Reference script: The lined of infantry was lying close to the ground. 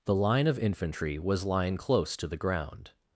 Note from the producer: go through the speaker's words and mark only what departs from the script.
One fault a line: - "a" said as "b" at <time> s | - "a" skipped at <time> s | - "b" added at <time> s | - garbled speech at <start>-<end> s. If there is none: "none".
- "lined" said as "line" at 0.1 s